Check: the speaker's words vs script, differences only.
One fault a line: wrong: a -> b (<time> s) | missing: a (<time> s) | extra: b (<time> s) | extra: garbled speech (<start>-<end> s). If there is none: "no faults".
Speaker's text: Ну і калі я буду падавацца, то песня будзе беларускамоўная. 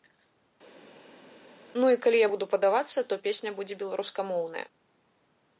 no faults